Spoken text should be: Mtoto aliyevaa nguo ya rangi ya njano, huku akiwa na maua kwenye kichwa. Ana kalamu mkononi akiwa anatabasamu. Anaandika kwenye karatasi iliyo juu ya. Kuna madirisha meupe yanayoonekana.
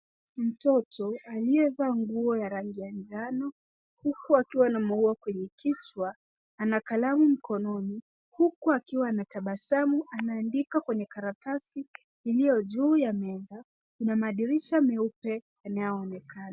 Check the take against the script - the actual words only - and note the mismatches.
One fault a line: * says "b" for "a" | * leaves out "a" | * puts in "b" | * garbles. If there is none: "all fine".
* puts in "huku"
* puts in "meza"